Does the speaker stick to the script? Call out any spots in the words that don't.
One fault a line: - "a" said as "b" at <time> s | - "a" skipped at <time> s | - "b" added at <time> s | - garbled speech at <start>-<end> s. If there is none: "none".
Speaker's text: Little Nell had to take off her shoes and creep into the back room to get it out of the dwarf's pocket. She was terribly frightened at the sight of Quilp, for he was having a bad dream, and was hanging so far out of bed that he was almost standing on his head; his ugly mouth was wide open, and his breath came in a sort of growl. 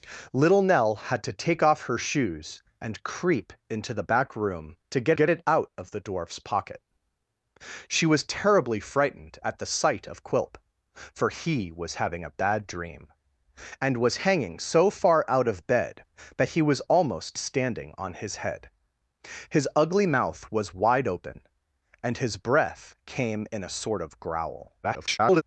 - "get" added at 5.1 s
- garbled speech at 24.8-25.4 s